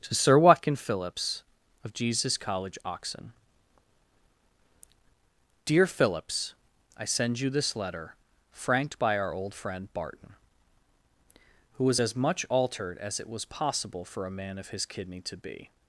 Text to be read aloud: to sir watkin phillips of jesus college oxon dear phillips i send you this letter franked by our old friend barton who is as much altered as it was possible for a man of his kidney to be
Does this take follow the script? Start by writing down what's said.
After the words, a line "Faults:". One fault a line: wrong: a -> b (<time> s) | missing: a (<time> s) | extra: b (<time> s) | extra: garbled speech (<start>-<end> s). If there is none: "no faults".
to sir watkin phillips of jesus college oxon dear phillips i send you this letter franked by our old friend barton who was as much altered as it was possible for a man of his kidney to be
Faults:
wrong: is -> was (11.8 s)